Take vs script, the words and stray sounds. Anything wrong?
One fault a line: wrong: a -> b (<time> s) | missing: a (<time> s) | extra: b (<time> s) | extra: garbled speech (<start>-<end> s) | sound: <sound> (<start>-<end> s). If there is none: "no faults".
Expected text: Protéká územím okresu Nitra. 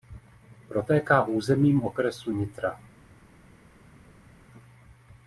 no faults